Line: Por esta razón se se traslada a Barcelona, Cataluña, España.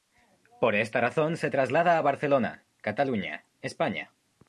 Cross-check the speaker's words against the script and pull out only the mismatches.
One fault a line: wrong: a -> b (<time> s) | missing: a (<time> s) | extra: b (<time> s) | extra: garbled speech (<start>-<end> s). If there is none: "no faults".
missing: se (1.5 s)